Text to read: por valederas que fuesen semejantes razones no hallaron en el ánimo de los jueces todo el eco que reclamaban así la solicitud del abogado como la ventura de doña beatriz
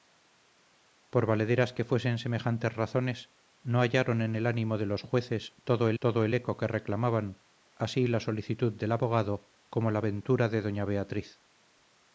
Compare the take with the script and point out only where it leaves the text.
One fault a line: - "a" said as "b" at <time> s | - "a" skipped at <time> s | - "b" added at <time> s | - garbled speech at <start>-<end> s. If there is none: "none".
- "todo el" added at 6.0 s